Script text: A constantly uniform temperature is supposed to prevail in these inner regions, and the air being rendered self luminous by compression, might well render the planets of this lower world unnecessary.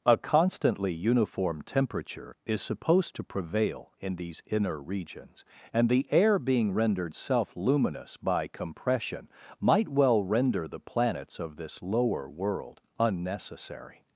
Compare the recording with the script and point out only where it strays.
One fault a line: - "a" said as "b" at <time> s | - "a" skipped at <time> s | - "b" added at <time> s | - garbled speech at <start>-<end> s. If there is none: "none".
none